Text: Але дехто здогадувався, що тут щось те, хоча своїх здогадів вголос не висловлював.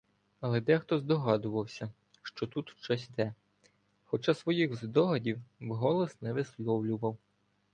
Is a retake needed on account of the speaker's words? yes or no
no